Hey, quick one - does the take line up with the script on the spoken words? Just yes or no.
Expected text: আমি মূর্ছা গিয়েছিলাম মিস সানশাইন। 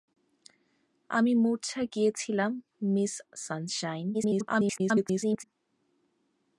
no